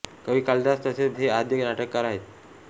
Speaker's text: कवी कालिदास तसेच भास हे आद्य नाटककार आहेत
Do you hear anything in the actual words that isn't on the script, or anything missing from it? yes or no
yes